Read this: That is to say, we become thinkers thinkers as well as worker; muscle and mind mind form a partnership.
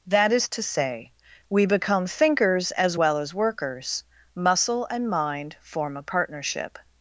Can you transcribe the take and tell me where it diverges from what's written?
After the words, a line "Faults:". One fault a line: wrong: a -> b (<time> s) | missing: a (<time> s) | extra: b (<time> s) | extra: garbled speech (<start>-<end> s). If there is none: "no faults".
That is to say, we become thinkers as well as workers; muscle and mind form a partnership.
Faults:
missing: thinkers (2.7 s)
wrong: worker -> workers (3.3 s)
missing: mind (5.6 s)